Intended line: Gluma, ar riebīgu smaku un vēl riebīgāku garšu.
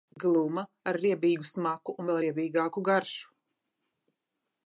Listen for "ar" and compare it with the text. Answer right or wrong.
right